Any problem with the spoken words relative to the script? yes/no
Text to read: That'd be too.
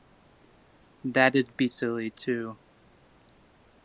yes